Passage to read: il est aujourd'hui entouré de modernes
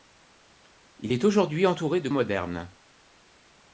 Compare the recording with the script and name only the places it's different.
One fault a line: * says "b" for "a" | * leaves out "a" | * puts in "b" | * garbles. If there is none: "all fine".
all fine